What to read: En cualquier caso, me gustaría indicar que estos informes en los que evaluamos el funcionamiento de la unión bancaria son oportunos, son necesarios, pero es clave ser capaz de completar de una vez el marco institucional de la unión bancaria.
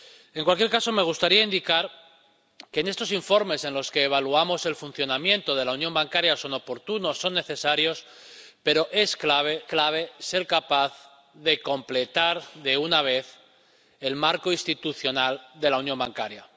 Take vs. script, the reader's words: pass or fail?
fail